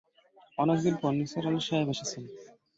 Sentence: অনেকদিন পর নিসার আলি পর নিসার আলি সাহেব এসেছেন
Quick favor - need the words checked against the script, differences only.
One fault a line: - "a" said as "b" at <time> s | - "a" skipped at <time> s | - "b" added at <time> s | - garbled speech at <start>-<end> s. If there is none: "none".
- "পর নিসার আলি" skipped at 1.6 s